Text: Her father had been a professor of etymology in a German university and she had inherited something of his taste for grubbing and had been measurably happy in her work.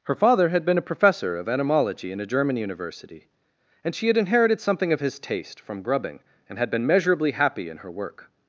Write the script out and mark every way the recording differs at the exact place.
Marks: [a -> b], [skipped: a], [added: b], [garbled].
Her father had been a professor of etymology in a German university and she had inherited something of his taste [for -> from] grubbing and had been measurably happy in her work.